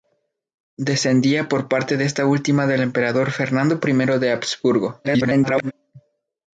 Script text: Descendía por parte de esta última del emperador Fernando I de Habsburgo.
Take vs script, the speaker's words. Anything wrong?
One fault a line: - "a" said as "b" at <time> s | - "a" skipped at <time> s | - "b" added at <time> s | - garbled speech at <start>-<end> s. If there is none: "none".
- garbled speech at 5.0-5.7 s